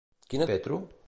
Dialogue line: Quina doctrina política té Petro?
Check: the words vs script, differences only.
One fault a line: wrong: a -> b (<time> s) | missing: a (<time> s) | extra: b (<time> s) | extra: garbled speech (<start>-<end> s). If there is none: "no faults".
missing: doctrina política té (0.5 s)